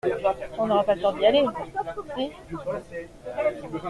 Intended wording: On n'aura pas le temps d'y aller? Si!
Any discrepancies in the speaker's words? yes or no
no